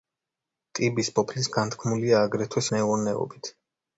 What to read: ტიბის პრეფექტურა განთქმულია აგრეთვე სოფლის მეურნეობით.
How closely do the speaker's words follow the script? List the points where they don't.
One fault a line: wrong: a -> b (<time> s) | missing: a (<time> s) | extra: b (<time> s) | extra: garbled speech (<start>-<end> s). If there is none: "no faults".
wrong: პრეფექტურა -> სოფლის (1.2 s)
missing: სოფლის (2.6 s)